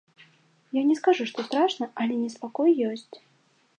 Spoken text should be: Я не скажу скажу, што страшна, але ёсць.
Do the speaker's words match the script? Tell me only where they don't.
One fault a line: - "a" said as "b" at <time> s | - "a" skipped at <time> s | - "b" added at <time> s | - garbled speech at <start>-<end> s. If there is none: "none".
- "скажу" skipped at 1.3 s
- "неспакой" added at 2.2 s